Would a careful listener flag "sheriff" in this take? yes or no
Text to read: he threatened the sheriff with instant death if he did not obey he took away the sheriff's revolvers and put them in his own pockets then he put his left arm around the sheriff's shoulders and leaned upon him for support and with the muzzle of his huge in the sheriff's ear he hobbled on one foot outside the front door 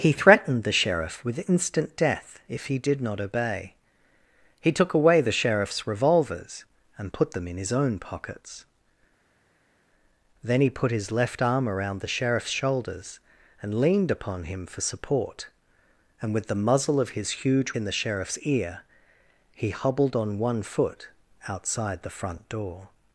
no